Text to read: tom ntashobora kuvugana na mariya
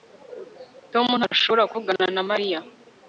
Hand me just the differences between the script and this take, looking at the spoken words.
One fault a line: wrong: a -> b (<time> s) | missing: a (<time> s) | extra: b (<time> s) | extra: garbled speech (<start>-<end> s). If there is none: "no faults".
no faults